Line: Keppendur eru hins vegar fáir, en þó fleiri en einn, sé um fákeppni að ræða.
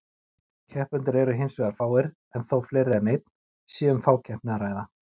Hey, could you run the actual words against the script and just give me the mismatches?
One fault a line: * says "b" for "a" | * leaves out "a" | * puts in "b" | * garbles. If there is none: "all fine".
all fine